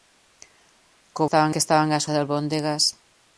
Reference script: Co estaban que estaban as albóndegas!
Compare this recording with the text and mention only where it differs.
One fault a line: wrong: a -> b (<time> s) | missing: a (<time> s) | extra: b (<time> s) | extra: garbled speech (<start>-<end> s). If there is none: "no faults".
no faults